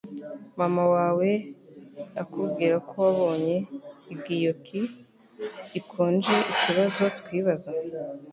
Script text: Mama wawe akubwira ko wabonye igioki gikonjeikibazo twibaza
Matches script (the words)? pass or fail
pass